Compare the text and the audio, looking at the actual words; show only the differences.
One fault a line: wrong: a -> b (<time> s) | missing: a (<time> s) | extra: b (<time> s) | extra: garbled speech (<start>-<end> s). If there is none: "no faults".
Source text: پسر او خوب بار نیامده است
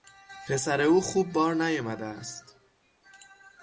no faults